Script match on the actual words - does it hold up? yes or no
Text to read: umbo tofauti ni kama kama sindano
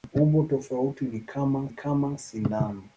yes